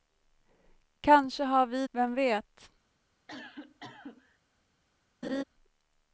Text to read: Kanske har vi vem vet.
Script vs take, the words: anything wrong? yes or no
no